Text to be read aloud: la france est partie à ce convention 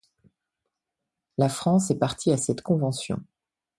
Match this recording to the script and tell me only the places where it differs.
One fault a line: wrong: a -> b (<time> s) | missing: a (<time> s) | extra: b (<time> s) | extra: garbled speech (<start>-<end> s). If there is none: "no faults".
wrong: ce -> cette (2.4 s)